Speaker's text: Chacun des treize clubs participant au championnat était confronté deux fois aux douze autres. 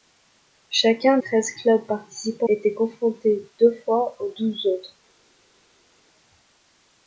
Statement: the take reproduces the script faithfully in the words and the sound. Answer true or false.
false